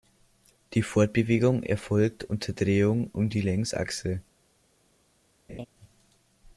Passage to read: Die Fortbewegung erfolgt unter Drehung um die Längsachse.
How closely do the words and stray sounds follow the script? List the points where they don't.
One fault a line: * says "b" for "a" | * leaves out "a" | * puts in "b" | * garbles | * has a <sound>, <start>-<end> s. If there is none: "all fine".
* has a laugh, 5.5-5.7 s